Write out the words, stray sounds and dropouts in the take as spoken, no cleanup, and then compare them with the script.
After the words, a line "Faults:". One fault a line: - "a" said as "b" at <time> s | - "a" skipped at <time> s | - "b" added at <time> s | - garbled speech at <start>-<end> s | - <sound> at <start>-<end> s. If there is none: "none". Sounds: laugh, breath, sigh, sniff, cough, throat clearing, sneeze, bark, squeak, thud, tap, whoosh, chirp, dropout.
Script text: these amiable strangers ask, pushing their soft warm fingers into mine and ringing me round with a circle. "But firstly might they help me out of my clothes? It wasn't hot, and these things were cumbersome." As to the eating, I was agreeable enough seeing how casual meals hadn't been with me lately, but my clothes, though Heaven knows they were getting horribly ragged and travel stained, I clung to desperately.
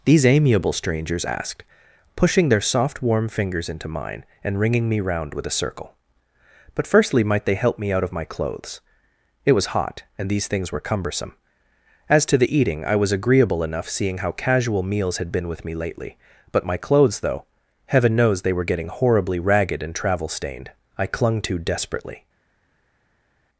these amiable strangers asked, pushing their soft warm fingers into mine and ringing me round with a circle. "But firstly might they help me out of my clothes? It was hot, and these things were cumbersome." As to the eating, I was agreeable enough seeing how casual meals had been with me lately, but my clothes, though Heaven knows they were getting horribly ragged and travel stained, I clung to desperately.
Faults:
- "ask" said as "asked" at 1.2 s
- "wasn't" said as "was" at 9.5 s
- "hadn't" said as "had" at 15.2 s